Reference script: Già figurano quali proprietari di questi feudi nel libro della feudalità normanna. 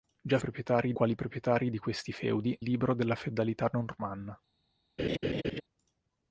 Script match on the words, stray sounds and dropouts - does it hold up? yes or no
no